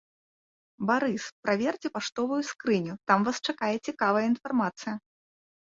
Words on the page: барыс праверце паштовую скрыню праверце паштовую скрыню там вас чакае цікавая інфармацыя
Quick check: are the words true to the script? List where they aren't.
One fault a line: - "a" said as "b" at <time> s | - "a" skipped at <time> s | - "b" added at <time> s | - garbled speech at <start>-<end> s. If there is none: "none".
- "праверце паштовую скрыню" skipped at 2.9 s